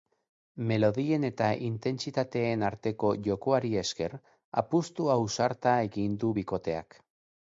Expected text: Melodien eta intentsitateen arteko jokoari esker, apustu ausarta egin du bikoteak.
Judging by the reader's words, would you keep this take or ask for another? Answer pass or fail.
pass